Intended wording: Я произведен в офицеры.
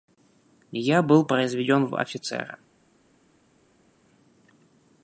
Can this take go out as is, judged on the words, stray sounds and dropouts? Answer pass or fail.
fail